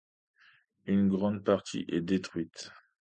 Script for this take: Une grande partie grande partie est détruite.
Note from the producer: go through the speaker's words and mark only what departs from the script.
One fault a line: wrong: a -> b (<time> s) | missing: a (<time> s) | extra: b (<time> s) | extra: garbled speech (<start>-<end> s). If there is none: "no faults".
missing: grande partie (1.9 s)